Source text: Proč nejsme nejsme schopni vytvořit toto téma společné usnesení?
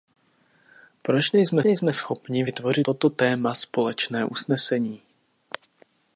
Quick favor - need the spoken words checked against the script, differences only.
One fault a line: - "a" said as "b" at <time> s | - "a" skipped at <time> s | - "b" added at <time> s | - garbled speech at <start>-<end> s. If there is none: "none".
none